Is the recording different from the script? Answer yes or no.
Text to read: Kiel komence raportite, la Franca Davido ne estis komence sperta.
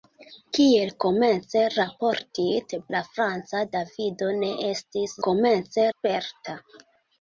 no